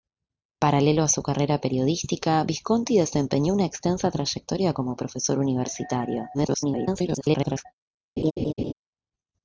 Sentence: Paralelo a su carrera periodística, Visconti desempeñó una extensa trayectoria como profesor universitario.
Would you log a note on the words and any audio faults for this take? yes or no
yes